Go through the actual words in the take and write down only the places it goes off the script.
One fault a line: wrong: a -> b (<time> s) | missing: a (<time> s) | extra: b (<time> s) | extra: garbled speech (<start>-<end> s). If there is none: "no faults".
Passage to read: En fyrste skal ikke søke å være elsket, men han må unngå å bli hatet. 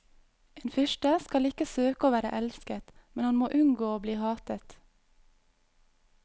no faults